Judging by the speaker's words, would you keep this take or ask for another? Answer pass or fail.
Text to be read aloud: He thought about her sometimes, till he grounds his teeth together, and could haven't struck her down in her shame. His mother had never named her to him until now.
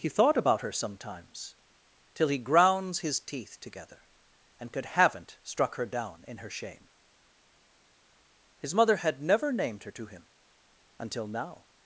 pass